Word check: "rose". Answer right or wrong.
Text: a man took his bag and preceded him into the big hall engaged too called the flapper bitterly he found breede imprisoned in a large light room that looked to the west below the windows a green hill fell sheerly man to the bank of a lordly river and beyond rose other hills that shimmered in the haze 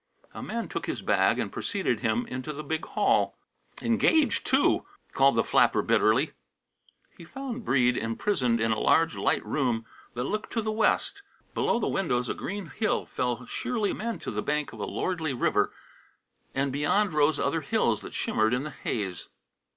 right